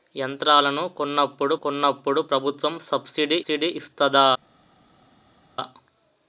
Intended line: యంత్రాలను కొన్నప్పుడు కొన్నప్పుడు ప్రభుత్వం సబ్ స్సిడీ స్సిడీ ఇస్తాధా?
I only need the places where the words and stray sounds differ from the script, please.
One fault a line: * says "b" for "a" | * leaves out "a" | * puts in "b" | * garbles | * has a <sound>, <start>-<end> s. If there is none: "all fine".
all fine